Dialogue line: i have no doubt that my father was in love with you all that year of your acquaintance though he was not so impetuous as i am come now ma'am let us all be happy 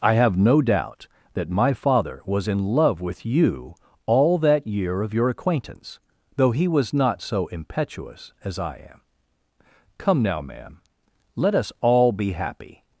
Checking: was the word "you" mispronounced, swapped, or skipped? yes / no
no